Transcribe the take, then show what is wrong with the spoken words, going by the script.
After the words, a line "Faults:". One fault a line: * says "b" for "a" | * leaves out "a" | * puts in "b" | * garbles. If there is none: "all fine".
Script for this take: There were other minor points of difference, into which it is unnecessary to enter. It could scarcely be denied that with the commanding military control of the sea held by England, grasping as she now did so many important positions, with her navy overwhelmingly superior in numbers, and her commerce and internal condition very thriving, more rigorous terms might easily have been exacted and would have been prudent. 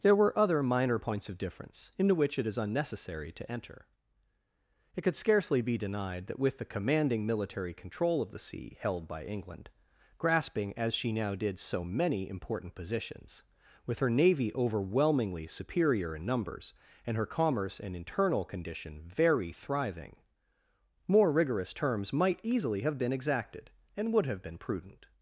There were other minor points of difference, into which it is unnecessary to enter. It could scarcely be denied that with the commanding military control of the sea held by England, grasping as she now did so many important positions, with her navy overwhelmingly superior in numbers, and her commerce and internal condition very thriving, more rigorous terms might easily have been exacted and would have been prudent.
Faults:
all fine